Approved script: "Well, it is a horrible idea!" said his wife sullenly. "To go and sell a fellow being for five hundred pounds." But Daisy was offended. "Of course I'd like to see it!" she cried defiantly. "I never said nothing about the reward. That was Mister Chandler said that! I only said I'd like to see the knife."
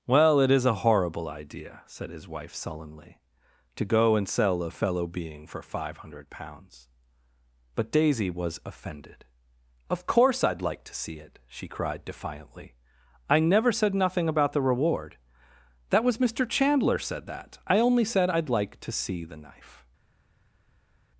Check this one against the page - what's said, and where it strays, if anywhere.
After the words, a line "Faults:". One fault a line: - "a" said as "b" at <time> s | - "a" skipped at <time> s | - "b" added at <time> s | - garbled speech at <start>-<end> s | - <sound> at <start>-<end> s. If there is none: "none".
"Well, it is a horrible idea!" said his wife sullenly. "To go and sell a fellow being for five hundred pounds." But Daisy was offended. "Of course I'd like to see it!" she cried defiantly. "I never said nothing about the reward. That was Mister Chandler said that! I only said I'd like to see the knife."
Faults:
none